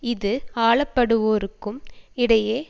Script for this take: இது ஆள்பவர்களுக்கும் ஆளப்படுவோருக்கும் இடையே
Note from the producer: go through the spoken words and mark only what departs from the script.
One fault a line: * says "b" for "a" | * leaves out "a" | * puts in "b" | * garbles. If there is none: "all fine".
* leaves out "ஆள்பவர்களுக்கும்"